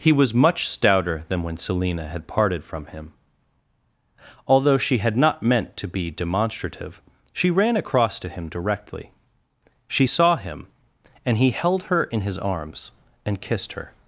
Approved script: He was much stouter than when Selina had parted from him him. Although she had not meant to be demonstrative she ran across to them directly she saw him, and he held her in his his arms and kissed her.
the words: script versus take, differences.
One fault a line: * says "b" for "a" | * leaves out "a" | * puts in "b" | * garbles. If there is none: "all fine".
* leaves out "him"
* says "him" for "them"
* leaves out "his"